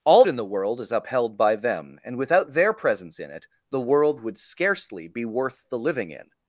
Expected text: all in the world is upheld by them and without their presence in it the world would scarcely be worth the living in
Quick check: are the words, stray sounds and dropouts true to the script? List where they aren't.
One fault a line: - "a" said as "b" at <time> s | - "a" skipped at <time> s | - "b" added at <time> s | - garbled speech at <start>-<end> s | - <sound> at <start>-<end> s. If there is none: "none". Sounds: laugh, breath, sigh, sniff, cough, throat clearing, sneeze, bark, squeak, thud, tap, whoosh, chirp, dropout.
none